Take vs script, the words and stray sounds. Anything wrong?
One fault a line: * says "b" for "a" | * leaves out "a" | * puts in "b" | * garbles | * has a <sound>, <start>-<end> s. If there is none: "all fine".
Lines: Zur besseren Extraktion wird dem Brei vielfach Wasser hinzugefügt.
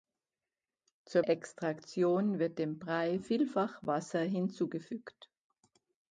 * leaves out "besseren"